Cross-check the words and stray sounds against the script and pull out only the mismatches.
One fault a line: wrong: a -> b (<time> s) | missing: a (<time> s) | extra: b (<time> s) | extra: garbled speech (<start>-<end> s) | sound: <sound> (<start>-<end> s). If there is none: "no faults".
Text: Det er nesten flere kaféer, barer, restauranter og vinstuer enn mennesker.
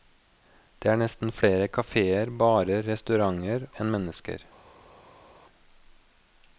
missing: og vinstuer (3.7 s)